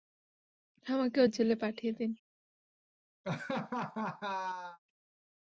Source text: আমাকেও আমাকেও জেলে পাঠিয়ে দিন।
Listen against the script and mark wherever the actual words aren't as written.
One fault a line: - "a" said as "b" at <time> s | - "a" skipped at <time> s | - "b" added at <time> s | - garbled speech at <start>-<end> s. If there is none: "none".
- "আমাকেও" skipped at 1.2 s